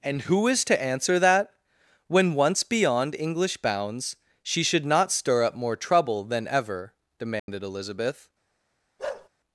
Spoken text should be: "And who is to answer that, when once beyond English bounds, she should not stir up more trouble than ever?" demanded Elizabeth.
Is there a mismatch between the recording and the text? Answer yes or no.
no